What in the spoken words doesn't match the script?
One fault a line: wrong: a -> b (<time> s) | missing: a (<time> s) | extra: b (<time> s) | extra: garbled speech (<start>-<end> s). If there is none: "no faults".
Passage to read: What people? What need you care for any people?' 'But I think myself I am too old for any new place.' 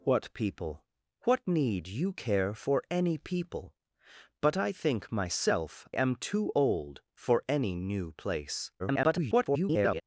missing: I (5.9 s)
extra: garbled speech (8.8-10.0 s)